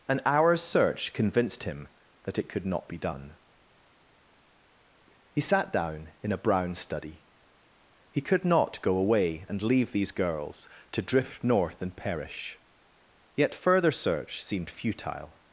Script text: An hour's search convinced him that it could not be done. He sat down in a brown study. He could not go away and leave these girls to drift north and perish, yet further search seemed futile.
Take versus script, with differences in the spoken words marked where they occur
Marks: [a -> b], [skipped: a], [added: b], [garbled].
An hour's search convinced him that it could not be done. He sat down in a brown study. He could not go away and leave these girls to drift north and perish, yet further search seemed futile.